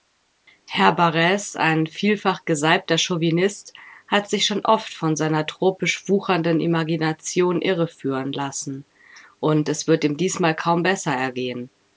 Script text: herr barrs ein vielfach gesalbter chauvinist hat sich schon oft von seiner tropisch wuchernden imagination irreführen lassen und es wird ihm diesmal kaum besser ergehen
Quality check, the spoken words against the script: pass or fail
pass